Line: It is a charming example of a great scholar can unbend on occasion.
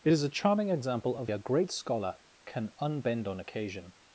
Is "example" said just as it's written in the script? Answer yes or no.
yes